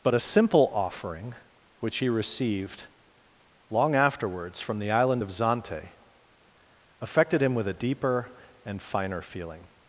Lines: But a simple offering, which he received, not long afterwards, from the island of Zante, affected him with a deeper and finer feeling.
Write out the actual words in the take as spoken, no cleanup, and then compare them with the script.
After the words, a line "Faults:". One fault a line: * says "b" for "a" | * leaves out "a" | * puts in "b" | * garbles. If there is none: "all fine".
But a simple offering, which he received, long afterwards, from the island of Zante, affected him with a deeper and finer feeling.
Faults:
* leaves out "not"